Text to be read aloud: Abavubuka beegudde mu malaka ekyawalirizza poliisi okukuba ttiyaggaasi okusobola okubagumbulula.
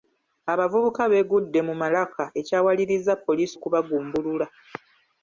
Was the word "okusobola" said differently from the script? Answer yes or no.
yes